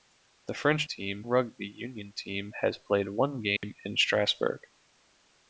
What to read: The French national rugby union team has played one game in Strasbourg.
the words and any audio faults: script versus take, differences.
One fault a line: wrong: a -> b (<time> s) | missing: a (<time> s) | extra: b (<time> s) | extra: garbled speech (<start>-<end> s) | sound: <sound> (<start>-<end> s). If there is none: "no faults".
wrong: national -> team (0.9 s)
sound: dropout (3.6-3.6 s)